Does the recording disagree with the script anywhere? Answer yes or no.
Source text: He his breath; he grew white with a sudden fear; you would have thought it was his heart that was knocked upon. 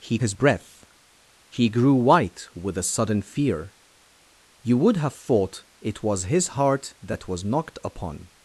no